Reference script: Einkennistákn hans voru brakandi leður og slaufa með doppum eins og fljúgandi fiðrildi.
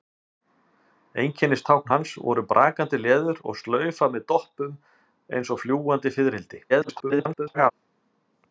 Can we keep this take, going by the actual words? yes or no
no